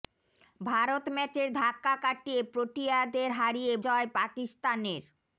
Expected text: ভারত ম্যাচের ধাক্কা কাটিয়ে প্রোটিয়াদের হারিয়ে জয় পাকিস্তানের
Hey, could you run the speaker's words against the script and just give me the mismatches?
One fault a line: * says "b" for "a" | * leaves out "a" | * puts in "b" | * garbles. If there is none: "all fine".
all fine